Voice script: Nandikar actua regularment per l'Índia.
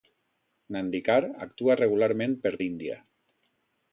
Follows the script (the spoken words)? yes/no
yes